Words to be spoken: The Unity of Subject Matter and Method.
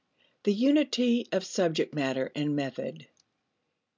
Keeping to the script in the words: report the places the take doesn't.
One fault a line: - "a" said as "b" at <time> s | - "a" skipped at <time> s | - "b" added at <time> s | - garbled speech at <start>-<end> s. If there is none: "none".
none